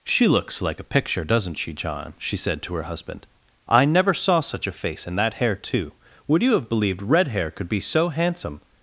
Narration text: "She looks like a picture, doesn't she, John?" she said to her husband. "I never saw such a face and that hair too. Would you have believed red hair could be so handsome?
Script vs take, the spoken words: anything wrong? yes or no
no